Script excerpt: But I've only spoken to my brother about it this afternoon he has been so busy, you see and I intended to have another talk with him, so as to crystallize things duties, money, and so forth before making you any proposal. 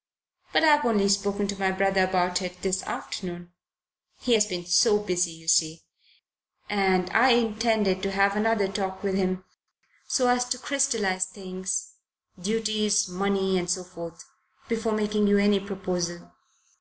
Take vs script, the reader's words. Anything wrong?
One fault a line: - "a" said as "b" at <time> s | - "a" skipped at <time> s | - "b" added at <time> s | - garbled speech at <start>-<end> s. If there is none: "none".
none